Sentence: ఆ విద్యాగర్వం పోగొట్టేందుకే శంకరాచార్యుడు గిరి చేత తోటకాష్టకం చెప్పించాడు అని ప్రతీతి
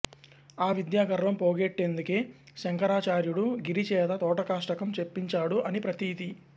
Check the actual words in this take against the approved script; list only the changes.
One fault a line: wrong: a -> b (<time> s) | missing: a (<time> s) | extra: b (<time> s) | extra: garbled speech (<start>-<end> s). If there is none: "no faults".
no faults